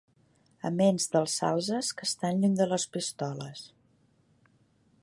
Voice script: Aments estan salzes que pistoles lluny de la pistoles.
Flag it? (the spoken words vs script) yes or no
yes